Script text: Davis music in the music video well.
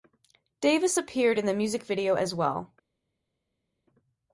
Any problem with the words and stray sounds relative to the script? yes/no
yes